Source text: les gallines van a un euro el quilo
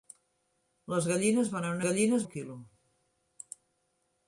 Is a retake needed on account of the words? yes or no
yes